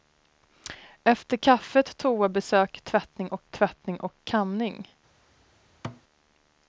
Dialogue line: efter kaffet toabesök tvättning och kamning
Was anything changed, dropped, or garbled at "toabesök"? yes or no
no